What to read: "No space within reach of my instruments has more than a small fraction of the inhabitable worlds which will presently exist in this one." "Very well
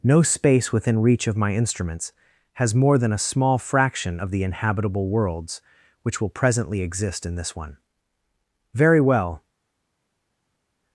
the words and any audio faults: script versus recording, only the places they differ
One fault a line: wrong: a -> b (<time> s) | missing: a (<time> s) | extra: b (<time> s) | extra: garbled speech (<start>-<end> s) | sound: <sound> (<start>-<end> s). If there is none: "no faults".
no faults